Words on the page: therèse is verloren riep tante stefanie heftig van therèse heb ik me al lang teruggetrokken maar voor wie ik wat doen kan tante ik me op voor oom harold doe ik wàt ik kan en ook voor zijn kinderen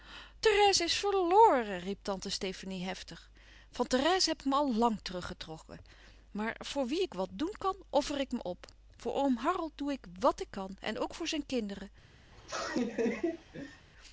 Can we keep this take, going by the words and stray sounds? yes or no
no